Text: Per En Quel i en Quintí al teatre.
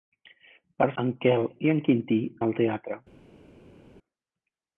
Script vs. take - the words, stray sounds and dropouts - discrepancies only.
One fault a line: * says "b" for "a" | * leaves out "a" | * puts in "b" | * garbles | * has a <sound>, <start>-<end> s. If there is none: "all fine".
all fine